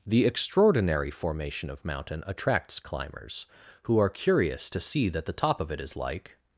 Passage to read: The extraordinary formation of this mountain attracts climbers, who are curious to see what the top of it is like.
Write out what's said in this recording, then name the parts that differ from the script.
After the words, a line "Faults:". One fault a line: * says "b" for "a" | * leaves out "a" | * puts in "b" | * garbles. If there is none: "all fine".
The extraordinary formation of mountain attracts climbers, who are curious to see that the top of it is like.
Faults:
* leaves out "this"
* says "that" for "what"